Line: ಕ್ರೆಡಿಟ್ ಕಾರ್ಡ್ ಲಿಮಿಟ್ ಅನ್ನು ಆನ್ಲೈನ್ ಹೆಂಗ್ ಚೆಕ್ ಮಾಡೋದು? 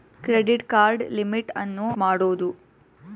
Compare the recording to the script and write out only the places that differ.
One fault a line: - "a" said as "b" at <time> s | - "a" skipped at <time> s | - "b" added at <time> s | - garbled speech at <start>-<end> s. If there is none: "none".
- "ಆನ್ಲೈನ್ ಹೆಂಗ್ ಚೆಕ್" skipped at 1.9 s